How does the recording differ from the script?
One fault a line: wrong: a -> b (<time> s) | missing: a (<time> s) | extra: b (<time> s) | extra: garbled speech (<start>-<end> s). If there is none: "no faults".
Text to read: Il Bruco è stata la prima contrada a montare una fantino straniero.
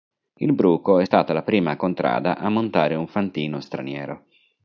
wrong: una -> un (3.0 s)